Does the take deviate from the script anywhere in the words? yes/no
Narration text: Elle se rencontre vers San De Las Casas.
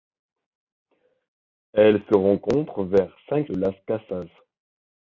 no